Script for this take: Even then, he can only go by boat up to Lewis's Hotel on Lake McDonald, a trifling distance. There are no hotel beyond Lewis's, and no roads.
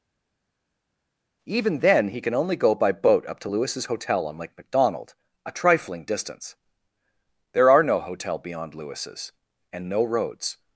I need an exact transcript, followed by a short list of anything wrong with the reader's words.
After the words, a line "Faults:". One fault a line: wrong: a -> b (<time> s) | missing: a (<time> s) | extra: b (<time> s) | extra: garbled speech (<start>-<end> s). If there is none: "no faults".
Even then, he can only go by boat up to Lewis's Hotel on Lake McDonald, a trifling distance. There are no hotel beyond Lewis's, and no roads.
Faults:
no faults